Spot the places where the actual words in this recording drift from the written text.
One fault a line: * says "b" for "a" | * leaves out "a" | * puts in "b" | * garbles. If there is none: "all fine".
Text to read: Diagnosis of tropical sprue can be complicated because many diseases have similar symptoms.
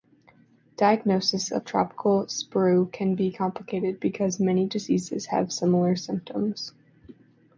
all fine